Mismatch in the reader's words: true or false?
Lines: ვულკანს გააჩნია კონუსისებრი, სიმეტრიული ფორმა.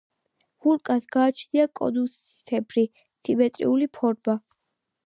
false